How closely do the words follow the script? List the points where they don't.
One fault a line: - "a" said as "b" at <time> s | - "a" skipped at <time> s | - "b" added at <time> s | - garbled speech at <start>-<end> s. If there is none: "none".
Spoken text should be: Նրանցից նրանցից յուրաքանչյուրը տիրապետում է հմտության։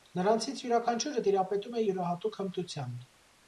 - "նրանցից" skipped at 0.6 s
- "յուրահատուկ" added at 1.9 s